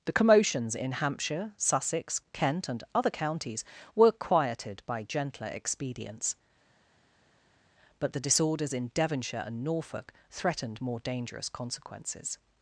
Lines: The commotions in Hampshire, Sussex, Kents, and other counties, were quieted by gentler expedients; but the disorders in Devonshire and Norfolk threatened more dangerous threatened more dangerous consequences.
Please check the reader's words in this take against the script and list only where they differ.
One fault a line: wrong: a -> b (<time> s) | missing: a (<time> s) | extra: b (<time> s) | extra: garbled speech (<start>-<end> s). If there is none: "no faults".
wrong: Kents -> Kent (2.3 s)
missing: threatened more dangerous (11.5 s)